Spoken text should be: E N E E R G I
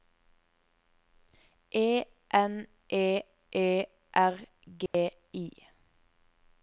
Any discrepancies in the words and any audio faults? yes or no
yes